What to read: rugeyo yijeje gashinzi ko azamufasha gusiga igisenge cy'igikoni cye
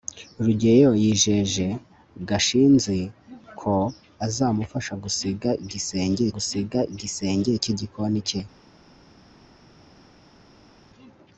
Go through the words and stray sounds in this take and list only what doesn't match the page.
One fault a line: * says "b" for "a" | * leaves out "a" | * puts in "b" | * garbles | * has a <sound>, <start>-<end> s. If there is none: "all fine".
* puts in "gusiga igisenge"